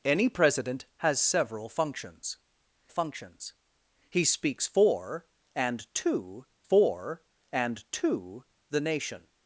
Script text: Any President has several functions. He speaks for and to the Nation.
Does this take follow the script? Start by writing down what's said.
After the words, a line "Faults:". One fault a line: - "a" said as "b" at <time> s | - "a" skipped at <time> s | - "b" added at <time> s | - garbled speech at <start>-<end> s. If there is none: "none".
Any President has several functions functions. He speaks for and to for and to the Nation.
Faults:
- "functions" added at 2.9 s
- "for and to" added at 6.6 s